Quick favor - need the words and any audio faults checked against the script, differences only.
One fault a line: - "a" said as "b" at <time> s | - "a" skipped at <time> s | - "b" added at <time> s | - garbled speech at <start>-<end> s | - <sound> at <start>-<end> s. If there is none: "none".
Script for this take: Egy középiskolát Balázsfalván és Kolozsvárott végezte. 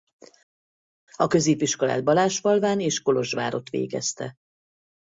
- "Egy" said as "A" at 1.2 s